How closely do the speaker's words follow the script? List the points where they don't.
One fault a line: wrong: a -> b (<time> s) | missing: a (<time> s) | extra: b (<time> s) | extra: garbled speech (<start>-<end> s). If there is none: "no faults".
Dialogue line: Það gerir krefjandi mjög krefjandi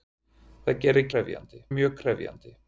no faults